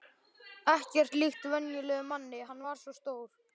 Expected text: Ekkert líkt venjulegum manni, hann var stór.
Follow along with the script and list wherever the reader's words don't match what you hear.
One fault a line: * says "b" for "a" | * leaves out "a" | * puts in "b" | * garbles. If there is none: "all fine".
* puts in "svo"